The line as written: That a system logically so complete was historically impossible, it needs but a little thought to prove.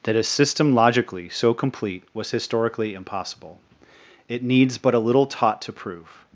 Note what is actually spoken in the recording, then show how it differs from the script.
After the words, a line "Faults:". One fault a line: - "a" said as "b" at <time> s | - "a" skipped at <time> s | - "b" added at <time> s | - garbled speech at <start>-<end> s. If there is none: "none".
That a system logically so complete was historically impossible, it needs but a little taught to prove.
Faults:
- "thought" said as "taught" at 5.2 s